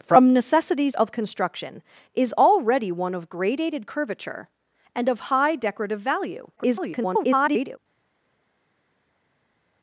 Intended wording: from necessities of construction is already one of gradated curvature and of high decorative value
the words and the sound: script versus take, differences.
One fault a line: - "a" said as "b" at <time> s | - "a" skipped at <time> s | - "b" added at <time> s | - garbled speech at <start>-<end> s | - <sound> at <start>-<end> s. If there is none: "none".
- garbled speech at 6.6-7.8 s